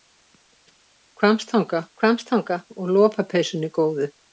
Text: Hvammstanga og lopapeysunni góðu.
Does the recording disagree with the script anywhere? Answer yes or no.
yes